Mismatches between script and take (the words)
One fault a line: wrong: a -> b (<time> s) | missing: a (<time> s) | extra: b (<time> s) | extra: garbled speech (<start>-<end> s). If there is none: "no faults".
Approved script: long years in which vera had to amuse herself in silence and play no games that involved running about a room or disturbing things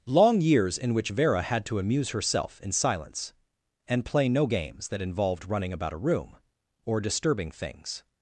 no faults